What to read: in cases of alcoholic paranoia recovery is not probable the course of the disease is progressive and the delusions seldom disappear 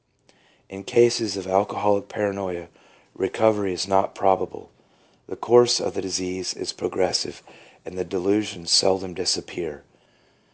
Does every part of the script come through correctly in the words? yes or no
yes